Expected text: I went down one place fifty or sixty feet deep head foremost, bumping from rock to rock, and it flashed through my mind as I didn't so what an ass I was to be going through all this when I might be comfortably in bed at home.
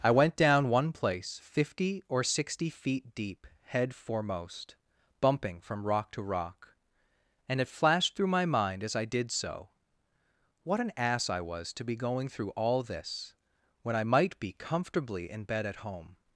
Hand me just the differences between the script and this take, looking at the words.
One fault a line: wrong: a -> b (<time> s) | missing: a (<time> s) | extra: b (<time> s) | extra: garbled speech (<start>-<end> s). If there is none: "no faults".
wrong: didn't -> did (9.1 s)